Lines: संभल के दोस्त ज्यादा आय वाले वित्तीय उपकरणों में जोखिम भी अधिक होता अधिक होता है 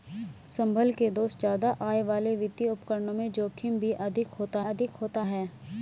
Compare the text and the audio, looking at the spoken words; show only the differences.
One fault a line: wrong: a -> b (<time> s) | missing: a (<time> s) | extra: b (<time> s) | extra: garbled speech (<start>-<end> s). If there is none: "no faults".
no faults